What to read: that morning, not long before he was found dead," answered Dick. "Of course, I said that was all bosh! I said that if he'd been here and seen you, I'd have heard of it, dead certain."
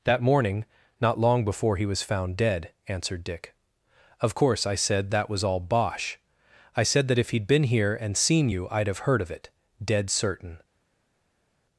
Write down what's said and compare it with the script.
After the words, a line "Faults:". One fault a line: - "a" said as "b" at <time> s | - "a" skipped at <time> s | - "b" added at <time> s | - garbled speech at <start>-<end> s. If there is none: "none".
that morning, not long before he was found dead," answered Dick. "Of course, I said that was all bosh! I said that if he'd been here and seen you, I'd have heard of it, dead certain."
Faults:
none